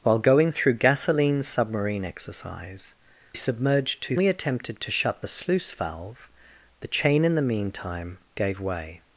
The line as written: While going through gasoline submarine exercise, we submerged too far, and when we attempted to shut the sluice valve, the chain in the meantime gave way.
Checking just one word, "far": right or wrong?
wrong